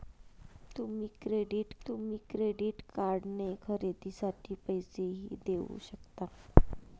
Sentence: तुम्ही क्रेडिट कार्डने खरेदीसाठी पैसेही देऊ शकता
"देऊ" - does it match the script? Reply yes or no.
yes